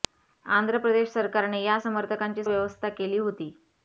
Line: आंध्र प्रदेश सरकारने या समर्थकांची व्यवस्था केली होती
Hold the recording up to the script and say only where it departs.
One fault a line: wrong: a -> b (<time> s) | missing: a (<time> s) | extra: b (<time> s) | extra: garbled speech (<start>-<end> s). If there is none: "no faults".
no faults